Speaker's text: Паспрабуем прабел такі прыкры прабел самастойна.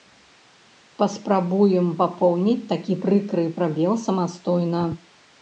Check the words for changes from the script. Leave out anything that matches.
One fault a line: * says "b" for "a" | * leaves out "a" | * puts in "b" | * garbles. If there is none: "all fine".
* says "папоўніць" for "прабел"